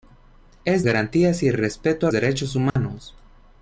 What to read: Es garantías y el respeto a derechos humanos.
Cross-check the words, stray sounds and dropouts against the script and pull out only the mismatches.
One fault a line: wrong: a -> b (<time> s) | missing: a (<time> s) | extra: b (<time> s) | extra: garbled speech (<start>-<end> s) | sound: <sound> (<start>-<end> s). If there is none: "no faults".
sound: dropout (2.7-2.8 s)